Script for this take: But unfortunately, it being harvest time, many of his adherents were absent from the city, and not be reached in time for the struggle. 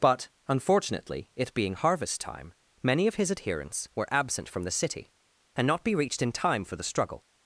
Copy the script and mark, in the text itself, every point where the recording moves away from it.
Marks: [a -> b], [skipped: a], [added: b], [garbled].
But unfortunately, it being harvest time, many of his adherents were absent from the city, and not be reached in time for the struggle.